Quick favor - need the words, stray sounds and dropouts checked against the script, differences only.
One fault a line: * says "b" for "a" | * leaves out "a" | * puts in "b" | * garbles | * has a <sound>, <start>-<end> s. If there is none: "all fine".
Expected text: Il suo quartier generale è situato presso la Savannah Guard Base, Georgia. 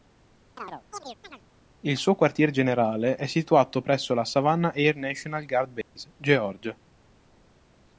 * has a chirp, 0.6-1.4 s
* puts in "Air National"
* has a dropout, 5.8-6.0 s